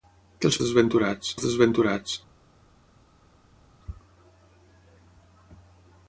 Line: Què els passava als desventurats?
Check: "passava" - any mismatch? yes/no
yes